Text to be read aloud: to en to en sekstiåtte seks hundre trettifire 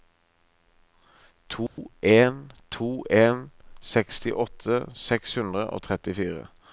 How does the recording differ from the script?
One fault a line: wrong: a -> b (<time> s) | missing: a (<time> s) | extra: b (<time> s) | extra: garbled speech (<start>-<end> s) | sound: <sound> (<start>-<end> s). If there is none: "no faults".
sound: dropout (1.7-1.8 s)
extra: og (5.7 s)